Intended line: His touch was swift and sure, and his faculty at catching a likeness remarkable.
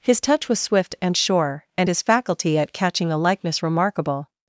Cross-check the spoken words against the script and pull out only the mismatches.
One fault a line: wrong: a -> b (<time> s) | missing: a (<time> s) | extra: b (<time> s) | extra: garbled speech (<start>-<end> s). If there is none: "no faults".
no faults